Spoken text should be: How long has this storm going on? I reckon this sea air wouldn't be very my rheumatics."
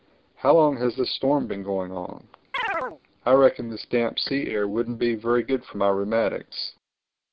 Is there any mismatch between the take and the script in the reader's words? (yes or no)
yes